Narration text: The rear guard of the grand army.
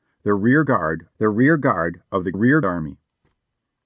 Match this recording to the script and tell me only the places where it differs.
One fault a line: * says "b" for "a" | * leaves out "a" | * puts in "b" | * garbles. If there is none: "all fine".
* puts in "the rear guard"
* says "rear" for "grand"